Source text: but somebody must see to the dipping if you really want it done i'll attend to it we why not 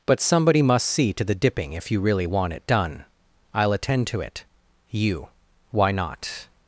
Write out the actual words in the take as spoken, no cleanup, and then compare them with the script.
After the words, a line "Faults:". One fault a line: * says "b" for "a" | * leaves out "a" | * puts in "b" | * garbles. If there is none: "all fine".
but somebody must see to the dipping if you really want it done i'll attend to it you why not
Faults:
* says "you" for "we"